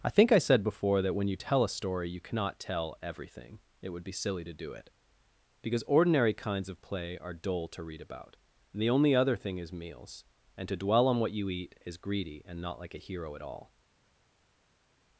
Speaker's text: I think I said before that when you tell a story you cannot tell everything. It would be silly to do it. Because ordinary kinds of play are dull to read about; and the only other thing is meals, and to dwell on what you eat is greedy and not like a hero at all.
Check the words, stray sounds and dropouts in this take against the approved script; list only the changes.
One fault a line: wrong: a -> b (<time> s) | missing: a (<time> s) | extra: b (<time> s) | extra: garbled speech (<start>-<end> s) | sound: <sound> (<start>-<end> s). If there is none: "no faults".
no faults